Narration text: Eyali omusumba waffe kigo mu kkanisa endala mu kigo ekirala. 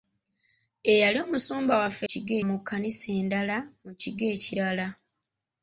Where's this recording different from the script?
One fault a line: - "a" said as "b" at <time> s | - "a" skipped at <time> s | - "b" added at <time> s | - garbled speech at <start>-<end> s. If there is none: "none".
none